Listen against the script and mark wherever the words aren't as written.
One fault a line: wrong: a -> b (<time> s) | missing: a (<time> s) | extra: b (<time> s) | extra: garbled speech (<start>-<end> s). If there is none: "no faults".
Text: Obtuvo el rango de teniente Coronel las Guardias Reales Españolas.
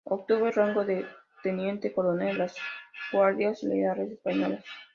no faults